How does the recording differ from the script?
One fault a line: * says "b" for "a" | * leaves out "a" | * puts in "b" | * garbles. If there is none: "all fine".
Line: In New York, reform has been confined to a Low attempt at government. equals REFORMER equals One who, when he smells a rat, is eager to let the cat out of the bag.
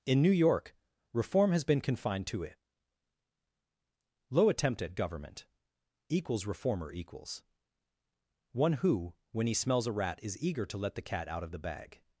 * says "it" for "a"